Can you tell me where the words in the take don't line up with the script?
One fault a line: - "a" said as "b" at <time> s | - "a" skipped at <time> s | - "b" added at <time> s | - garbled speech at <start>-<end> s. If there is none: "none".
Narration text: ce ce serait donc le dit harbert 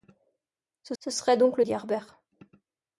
none